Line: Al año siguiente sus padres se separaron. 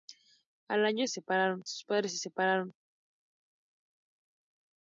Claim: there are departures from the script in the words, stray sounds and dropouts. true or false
true